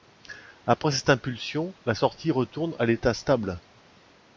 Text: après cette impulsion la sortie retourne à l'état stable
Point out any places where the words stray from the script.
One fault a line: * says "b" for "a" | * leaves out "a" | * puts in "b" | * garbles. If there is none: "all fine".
all fine